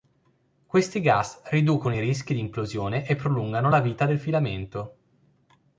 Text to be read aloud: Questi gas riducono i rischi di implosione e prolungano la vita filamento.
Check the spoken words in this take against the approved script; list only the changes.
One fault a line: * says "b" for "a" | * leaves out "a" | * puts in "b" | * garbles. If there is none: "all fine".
* puts in "del"